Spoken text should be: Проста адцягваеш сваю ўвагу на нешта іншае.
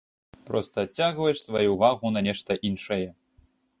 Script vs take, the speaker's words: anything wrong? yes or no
no